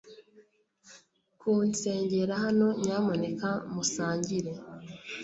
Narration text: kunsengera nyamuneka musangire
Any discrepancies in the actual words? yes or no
yes